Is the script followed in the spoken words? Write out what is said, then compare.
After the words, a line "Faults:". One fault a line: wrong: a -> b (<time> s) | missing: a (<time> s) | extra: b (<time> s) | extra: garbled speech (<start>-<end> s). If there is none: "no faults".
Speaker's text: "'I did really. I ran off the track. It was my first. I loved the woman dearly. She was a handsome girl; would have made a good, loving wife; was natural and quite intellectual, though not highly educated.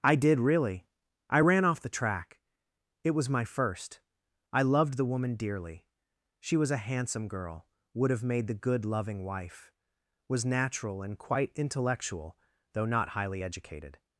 "'I did really. I ran off the track. It was my first. I loved the woman dearly. She was a handsome girl; would have made the good, loving wife; was natural and quite intellectual, though not highly educated.
Faults:
wrong: a -> the (8.5 s)